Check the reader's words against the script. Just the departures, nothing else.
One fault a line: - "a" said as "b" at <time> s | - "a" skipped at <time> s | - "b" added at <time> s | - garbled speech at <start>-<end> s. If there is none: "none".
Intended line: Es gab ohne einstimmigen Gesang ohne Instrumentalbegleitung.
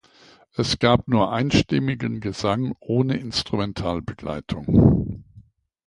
- "ohne" said as "nur" at 1.1 s